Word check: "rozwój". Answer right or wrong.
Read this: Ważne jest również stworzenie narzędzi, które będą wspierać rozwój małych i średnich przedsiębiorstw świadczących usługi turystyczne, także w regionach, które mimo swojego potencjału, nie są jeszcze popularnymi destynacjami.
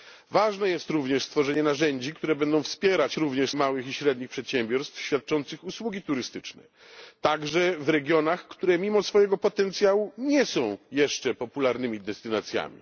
wrong